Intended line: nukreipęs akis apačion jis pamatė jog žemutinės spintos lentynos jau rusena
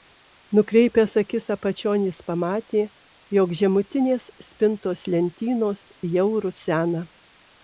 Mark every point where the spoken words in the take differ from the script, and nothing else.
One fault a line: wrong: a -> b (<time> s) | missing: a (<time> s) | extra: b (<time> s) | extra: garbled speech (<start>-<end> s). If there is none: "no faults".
no faults